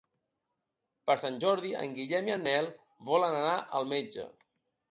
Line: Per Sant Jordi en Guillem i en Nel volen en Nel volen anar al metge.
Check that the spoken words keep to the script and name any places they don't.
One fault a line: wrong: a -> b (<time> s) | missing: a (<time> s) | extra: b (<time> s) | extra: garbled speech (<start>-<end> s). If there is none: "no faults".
missing: en Nel volen (3.4 s)